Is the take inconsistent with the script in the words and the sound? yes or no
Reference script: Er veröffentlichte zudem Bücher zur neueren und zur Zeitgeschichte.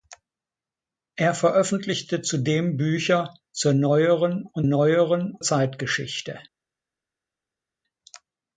yes